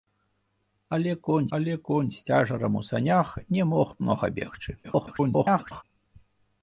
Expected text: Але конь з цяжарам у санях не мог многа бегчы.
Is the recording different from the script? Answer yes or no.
yes